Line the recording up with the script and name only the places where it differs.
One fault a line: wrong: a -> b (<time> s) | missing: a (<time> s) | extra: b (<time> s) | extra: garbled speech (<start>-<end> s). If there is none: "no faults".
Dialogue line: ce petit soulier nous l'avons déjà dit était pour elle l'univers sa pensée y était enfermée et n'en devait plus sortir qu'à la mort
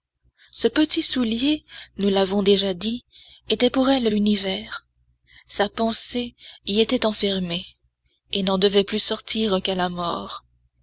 no faults